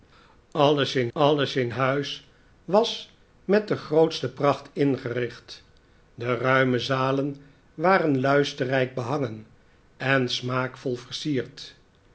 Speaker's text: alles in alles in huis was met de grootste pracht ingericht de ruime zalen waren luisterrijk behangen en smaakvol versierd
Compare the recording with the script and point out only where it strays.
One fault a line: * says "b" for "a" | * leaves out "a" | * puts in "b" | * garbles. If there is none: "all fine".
all fine